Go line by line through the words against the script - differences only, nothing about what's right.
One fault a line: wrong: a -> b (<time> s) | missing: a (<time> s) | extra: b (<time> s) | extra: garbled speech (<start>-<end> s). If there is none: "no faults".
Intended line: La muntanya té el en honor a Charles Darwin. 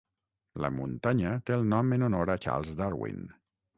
extra: nom (1.7 s)